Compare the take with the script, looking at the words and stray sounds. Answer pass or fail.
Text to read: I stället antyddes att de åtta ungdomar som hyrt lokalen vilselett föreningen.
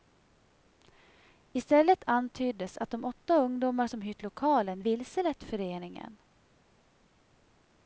pass